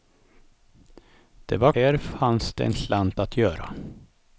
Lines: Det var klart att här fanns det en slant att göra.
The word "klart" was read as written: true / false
false